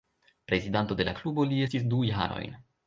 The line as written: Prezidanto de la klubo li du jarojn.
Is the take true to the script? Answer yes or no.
no